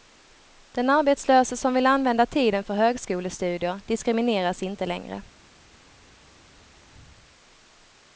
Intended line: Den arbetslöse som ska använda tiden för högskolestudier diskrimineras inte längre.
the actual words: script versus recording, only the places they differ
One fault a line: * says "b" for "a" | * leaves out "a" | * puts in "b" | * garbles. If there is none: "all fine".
* says "vill" for "ska"